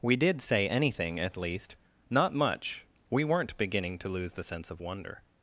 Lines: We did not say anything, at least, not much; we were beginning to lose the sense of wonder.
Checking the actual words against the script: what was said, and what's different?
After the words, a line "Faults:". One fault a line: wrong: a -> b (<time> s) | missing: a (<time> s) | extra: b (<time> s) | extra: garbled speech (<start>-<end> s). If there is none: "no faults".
We did say anything, at least, not much; we weren't beginning to lose the sense of wonder.
Faults:
missing: not (0.4 s)
wrong: were -> weren't (3.2 s)